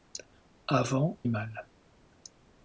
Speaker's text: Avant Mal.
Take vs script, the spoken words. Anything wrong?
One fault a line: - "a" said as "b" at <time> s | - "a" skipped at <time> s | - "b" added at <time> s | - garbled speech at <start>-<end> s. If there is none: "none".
none